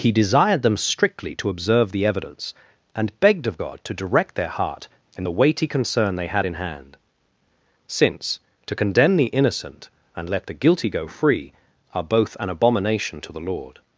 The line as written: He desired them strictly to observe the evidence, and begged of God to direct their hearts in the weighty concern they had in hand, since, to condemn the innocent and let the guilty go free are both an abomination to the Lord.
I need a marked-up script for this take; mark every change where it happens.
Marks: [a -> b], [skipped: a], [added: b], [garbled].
He desired them strictly to observe the evidence, and begged of God to direct their [hearts -> heart] in the weighty concern they had in hand, since, to condemn the innocent and let the guilty go free are both an abomination to the Lord.